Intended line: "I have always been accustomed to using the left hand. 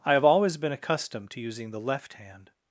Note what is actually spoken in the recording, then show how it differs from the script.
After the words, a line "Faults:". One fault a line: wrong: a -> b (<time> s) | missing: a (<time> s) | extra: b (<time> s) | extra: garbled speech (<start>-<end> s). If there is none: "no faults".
"I have always been accustomed to using the left hand.
Faults:
no faults